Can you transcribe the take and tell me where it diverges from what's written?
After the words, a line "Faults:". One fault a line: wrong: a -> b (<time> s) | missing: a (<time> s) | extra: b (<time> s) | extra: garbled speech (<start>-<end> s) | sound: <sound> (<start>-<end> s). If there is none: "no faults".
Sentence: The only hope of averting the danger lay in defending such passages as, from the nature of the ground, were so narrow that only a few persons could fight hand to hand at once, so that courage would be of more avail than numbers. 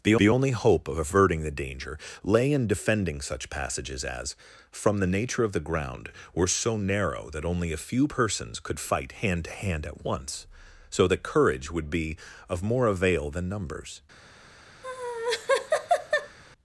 The the only hope of averting the danger lay in defending such passages as, from the nature of the ground, were so narrow that only a few persons could fight hand to hand at once, so that courage would be of more avail than numbers.
Faults:
extra: the (0.2 s)
sound: laugh (14.8-16.4 s)